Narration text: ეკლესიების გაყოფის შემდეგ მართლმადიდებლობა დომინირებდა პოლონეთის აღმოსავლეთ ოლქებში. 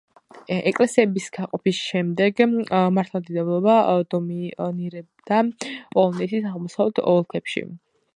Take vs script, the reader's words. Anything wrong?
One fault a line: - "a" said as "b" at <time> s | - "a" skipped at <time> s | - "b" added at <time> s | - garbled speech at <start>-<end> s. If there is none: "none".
none